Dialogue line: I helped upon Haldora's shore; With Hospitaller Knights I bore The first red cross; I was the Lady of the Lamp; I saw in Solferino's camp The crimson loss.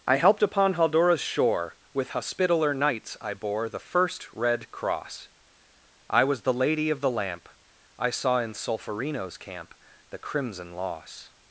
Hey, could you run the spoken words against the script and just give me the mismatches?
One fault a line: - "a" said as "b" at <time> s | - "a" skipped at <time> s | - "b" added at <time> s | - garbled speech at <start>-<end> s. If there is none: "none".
none